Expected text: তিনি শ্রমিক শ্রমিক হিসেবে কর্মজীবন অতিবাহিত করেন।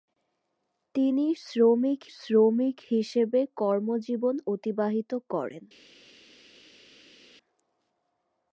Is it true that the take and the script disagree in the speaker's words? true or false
false